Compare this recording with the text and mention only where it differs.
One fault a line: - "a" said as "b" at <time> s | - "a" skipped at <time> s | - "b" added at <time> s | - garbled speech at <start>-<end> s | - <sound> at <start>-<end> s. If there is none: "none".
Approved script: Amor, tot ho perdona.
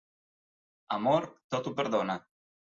none